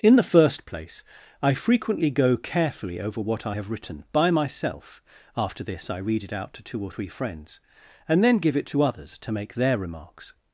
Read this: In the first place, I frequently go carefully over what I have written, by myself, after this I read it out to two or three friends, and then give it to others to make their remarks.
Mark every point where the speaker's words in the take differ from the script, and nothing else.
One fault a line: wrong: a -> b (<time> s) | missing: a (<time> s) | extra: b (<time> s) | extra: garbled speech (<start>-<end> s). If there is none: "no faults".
no faults